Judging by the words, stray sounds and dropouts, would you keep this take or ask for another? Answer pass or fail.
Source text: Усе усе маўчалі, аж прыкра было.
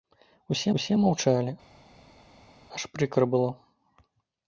pass